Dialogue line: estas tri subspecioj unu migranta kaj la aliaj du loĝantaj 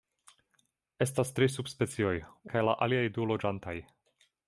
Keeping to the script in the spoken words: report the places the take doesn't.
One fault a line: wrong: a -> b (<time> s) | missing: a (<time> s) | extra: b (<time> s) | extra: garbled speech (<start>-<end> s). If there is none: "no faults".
missing: unu migranta (2.1 s)